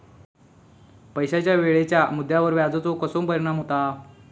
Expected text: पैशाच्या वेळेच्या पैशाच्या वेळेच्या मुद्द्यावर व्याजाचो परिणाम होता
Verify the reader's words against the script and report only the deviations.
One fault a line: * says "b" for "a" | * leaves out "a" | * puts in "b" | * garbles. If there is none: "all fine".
* leaves out "पैशाच्या वेळेच्या"
* puts in "कसो"